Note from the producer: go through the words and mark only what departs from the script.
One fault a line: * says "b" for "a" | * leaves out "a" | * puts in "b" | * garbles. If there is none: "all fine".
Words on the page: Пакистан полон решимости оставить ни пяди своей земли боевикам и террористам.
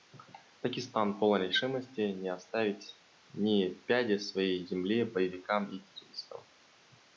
* puts in "не"